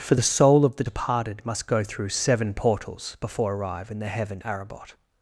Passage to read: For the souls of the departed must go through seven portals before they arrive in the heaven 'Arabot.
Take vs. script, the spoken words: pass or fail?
fail